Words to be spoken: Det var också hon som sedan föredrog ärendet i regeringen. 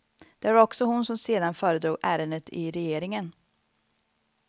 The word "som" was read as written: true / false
true